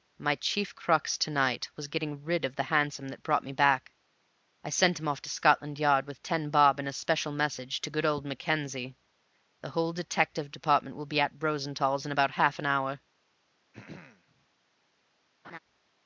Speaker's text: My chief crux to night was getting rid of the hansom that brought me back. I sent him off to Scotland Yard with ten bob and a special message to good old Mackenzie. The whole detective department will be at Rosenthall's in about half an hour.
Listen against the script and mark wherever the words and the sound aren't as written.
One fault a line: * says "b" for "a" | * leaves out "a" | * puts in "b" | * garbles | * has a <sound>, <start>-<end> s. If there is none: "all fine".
* has a throat clearing, 13.7-14.5 s
* has a laugh, 15.4-15.6 s